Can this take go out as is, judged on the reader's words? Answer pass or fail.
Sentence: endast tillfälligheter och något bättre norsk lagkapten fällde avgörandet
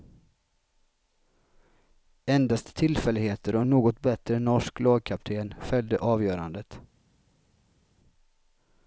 fail